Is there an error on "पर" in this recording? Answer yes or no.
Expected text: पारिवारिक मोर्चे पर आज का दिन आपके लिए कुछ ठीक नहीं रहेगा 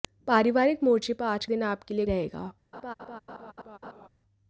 no